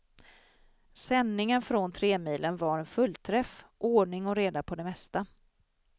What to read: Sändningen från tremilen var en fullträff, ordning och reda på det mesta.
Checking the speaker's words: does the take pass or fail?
pass